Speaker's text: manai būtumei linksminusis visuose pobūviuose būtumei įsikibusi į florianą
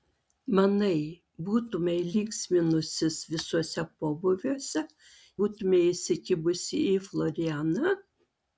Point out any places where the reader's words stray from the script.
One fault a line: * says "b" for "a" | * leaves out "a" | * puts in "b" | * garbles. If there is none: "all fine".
all fine